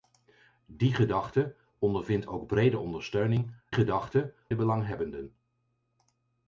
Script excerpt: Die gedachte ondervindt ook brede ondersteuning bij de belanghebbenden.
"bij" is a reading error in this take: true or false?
true